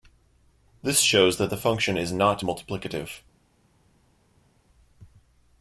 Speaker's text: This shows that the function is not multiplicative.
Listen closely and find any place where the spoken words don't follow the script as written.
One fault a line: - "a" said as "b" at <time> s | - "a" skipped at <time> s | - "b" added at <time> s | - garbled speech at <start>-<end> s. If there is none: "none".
none